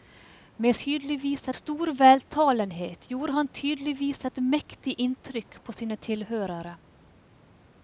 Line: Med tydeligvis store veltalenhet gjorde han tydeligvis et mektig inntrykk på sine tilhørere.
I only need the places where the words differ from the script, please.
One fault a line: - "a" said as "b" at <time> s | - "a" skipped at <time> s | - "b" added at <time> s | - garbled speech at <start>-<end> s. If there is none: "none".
none